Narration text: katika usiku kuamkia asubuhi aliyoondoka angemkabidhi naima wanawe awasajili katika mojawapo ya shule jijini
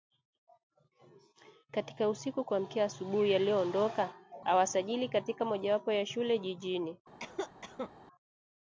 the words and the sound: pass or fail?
fail